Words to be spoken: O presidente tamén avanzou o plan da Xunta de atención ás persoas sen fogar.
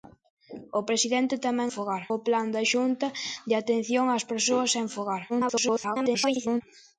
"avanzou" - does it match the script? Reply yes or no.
no